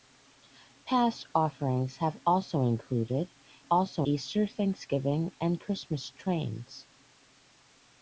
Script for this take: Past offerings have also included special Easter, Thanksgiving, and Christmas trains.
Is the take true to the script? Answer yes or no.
no